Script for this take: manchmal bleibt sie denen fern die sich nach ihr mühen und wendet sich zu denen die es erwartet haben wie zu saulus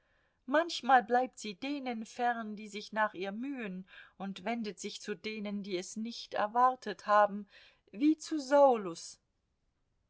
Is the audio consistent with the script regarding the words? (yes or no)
no